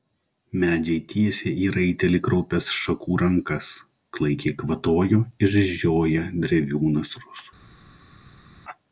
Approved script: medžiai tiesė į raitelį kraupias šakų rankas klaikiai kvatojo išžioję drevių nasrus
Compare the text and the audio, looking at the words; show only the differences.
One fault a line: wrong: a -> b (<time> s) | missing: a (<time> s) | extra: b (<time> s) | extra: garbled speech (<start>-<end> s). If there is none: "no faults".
no faults